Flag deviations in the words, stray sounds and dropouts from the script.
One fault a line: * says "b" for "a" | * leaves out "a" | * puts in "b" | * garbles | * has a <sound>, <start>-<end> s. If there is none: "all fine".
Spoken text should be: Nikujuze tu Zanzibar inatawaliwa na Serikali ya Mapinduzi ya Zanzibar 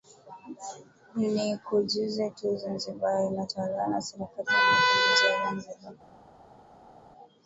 all fine